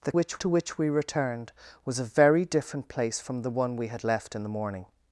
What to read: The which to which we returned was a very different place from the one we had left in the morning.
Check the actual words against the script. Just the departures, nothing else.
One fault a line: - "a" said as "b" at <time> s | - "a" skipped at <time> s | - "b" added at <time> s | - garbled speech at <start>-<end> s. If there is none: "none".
none